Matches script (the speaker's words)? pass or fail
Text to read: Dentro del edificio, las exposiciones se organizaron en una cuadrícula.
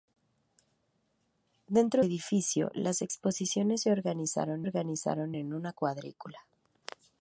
fail